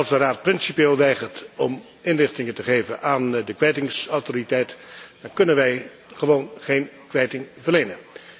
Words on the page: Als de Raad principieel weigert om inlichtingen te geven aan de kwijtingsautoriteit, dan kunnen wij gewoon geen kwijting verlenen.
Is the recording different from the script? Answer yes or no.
no